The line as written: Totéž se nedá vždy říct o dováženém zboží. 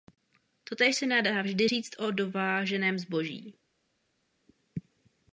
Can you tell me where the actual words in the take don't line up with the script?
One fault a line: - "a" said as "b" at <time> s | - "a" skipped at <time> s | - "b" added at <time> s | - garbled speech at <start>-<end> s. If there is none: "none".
none